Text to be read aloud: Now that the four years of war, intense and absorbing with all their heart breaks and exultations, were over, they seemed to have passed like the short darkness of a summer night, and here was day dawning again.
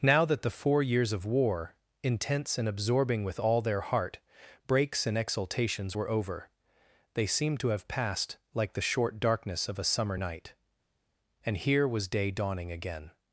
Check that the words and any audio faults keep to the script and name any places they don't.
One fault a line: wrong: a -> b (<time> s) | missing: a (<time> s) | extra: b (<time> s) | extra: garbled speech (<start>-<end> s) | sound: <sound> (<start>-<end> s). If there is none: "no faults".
no faults